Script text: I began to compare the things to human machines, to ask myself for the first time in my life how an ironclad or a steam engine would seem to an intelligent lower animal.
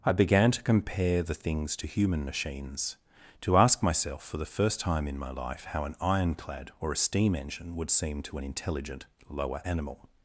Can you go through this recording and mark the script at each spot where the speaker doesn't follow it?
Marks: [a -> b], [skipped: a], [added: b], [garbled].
I began to compare the things to human machines, to ask myself for the first time in my life how an ironclad or a steam engine would seem to an intelligent lower animal.